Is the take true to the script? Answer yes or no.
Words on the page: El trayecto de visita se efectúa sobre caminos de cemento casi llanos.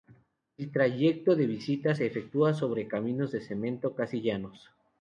yes